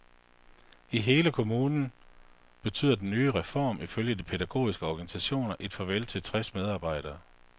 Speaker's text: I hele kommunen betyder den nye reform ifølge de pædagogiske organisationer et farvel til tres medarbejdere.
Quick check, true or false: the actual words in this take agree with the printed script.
true